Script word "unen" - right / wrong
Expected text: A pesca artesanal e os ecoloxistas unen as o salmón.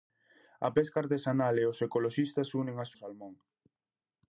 right